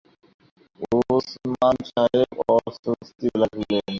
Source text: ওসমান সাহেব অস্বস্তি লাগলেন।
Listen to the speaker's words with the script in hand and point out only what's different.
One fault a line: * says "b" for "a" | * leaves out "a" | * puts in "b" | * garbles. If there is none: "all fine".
all fine